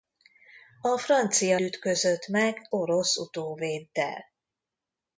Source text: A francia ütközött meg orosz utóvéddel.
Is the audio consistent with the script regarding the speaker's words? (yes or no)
yes